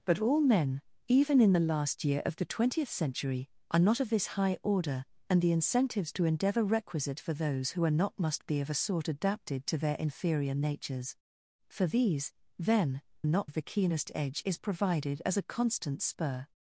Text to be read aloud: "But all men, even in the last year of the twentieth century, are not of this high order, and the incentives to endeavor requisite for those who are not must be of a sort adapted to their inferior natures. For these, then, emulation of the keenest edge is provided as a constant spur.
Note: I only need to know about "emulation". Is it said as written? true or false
false